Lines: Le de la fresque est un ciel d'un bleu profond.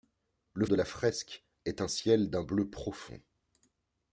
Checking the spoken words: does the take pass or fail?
pass